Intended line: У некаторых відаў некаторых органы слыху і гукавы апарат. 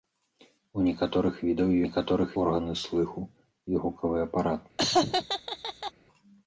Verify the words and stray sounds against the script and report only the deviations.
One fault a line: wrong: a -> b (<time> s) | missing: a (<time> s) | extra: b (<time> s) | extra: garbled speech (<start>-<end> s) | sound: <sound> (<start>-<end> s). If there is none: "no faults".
sound: laugh (4.8-5.9 s)